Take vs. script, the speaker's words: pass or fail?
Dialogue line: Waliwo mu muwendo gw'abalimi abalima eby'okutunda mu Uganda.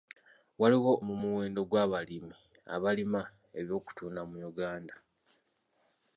pass